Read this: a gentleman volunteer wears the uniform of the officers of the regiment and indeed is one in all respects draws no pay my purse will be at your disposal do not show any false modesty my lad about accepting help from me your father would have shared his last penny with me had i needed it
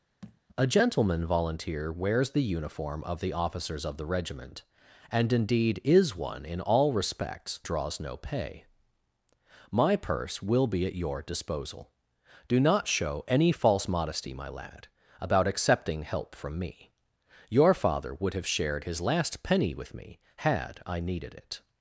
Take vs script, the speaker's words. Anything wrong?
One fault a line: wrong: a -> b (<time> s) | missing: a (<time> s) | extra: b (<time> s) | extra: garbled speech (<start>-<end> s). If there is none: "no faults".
no faults